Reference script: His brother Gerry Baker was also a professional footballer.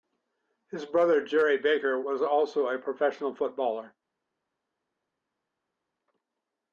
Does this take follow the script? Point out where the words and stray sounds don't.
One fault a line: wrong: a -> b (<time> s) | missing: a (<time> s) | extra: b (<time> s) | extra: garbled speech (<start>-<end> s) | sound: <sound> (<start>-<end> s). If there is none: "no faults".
no faults